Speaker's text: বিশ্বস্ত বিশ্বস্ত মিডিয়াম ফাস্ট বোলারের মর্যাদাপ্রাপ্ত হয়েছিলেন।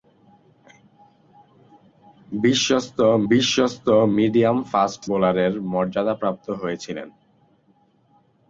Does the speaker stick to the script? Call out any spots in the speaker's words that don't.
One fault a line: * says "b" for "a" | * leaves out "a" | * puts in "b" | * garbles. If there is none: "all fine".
all fine